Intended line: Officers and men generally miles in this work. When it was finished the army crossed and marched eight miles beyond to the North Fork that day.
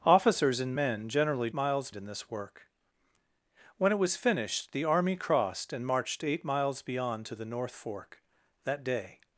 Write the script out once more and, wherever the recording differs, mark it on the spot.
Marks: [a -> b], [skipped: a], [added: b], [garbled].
Officers and men generally miles in this work. When it was finished the army crossed and marched eight miles beyond to the North Fork that day.